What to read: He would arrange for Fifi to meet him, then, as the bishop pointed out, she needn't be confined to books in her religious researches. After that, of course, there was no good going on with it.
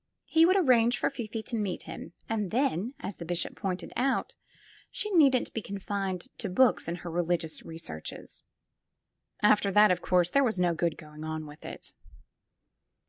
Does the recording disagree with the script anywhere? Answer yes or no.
yes